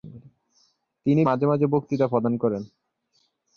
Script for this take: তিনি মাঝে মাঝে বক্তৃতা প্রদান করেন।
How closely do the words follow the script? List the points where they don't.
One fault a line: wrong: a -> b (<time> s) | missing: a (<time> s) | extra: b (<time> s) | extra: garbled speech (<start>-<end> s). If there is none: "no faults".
no faults